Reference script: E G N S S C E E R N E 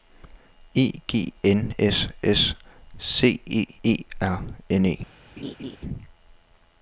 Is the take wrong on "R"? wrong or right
right